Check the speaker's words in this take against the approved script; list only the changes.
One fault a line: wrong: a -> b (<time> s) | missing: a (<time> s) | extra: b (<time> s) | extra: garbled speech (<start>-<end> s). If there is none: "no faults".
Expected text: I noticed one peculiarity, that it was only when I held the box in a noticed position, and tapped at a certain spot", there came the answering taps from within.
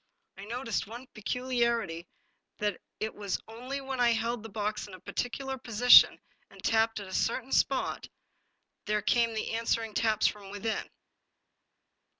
wrong: noticed -> particular (5.0 s)